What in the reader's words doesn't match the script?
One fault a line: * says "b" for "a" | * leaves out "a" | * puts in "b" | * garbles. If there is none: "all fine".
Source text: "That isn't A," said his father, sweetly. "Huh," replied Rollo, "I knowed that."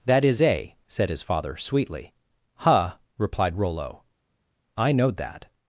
* says "is" for "isn't"